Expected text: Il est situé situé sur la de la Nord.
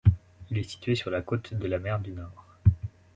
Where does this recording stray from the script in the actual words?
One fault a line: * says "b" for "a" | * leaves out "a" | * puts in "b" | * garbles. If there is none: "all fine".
* leaves out "situé"
* puts in "côte"
* puts in "mer du"